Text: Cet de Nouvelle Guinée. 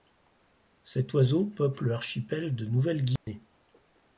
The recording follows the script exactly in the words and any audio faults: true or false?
false